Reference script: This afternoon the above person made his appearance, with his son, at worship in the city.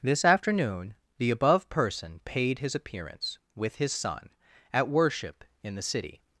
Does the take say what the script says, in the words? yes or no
no